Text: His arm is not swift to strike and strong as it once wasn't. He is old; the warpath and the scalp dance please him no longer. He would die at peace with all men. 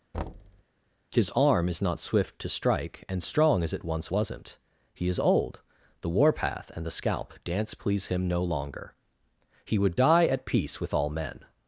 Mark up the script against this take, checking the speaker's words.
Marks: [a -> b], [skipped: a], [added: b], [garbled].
His arm is not swift to strike and strong as it once wasn't. He is old; the warpath and the scalp dance please him no longer. He would die at peace with all men.